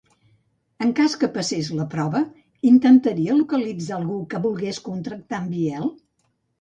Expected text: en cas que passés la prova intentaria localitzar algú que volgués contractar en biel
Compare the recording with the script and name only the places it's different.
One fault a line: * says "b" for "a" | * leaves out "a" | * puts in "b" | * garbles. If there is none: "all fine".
all fine